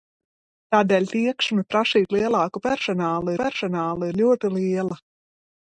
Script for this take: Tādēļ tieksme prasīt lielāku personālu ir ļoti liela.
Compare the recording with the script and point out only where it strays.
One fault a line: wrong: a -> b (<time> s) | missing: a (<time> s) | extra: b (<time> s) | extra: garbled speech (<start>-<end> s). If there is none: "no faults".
extra: personālu (3.4 s)